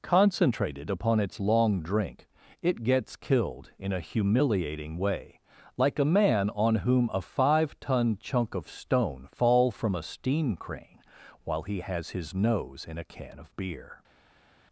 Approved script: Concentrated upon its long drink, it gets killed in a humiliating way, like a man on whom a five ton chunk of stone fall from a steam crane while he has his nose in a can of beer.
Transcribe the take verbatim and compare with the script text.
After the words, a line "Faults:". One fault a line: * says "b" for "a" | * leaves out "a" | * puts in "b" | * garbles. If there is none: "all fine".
Concentrated upon its long drink, it gets killed in a humiliating way, like a man on whom a five ton chunk of stone fall from a steam crane while he has his nose in a can of beer.
Faults:
all fine